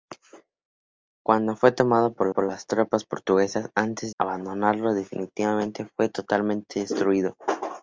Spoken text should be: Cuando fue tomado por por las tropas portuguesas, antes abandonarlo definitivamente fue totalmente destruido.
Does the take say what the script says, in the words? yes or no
yes